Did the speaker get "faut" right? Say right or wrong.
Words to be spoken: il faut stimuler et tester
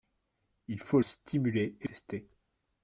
right